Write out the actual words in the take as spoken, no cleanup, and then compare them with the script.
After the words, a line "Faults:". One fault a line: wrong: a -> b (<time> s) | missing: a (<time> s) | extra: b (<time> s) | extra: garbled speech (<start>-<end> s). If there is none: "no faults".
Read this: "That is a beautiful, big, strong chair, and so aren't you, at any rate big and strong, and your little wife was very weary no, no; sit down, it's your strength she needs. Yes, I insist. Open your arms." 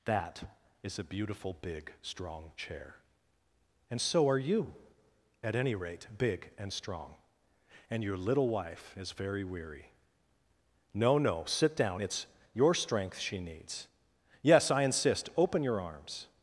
"That is a beautiful, big, strong chair, and so are you, at any rate big and strong, and your little wife is very weary no, no; sit down, it's your strength she needs. Yes, I insist. Open your arms."
Faults:
wrong: aren't -> are (4.3 s)
wrong: was -> is (9.0 s)